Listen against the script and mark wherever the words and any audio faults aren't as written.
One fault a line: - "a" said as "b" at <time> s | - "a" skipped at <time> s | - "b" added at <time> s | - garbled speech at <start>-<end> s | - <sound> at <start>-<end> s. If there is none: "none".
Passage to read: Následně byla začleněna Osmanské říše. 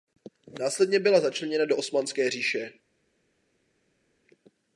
- "do" added at 1.6 s